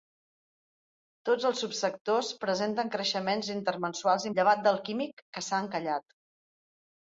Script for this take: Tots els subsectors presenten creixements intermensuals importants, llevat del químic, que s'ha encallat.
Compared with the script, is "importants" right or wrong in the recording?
wrong